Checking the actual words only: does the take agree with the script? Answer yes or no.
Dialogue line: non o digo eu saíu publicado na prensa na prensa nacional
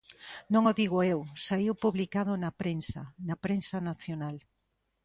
yes